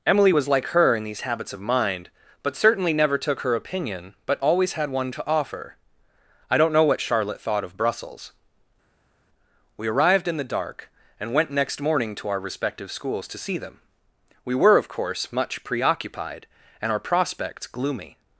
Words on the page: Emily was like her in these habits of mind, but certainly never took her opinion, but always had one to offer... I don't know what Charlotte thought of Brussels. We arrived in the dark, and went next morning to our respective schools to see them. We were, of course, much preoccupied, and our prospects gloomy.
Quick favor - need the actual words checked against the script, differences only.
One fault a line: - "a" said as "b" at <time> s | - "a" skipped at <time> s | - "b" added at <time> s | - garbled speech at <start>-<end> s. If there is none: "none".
none